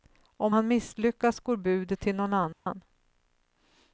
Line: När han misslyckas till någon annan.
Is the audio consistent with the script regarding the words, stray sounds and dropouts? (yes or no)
no